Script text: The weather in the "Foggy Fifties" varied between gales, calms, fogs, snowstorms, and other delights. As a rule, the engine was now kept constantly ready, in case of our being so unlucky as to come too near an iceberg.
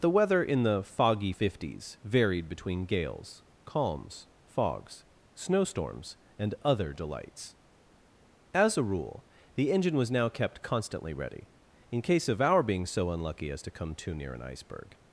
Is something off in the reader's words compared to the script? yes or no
no